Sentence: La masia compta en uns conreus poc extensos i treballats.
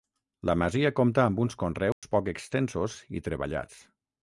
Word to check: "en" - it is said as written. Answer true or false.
false